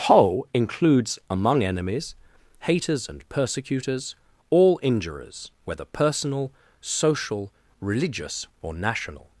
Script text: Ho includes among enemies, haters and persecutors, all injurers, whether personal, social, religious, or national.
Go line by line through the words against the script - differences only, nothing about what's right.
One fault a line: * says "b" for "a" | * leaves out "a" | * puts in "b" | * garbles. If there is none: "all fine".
* says "Whole" for "Ho"